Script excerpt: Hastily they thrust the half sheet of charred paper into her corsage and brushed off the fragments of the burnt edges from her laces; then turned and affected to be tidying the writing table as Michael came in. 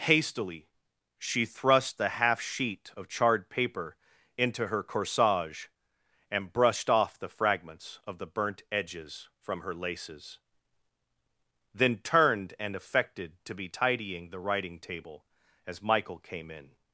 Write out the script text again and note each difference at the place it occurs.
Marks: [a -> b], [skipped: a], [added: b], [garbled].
Hastily [they -> she] thrust the half sheet of charred paper into her corsage and brushed off the fragments of the burnt edges from her laces; then turned and affected to be tidying the writing table as Michael came in.